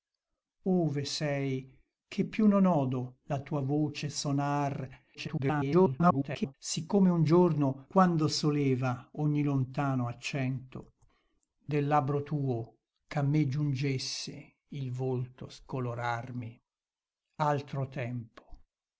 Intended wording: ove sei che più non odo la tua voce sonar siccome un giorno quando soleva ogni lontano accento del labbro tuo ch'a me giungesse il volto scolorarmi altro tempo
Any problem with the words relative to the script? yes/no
yes